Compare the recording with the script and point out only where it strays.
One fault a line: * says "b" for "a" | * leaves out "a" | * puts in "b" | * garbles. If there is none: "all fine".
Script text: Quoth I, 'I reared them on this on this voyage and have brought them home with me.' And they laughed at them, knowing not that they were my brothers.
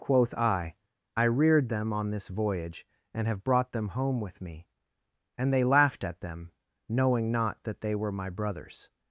* leaves out "on this"